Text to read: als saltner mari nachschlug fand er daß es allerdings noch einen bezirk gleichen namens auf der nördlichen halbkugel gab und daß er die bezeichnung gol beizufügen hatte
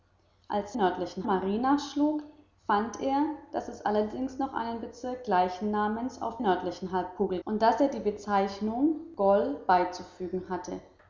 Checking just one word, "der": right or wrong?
wrong